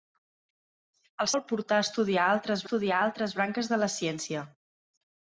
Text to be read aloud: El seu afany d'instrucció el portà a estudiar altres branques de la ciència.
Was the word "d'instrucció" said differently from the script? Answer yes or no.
yes